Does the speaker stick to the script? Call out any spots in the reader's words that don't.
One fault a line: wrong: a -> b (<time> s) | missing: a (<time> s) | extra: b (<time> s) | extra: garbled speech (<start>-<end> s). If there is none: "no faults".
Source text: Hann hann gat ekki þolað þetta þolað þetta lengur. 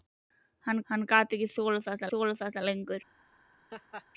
no faults